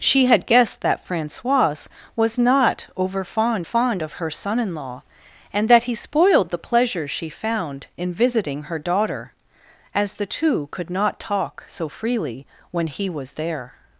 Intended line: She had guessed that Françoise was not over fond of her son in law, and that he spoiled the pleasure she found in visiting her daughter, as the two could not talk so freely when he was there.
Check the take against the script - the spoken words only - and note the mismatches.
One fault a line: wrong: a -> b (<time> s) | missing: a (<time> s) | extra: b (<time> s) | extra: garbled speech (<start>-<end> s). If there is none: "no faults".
extra: fond (3.6 s)